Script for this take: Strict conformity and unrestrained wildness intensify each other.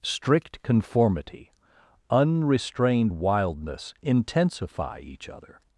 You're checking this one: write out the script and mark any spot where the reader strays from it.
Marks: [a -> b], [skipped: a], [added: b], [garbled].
Strict conformity [skipped: and] unrestrained wildness intensify each other.